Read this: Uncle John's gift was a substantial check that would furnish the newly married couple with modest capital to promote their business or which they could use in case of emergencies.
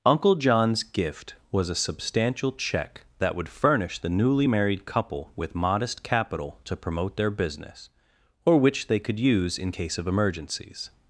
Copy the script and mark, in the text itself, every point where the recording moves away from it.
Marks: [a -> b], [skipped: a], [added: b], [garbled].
Uncle John's gift was a substantial check that would furnish the newly married couple with modest capital to promote their business or which they could use in case of emergencies.